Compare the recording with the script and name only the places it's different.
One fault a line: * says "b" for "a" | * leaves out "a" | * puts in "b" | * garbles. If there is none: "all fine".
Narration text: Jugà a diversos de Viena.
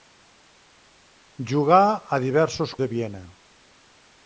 all fine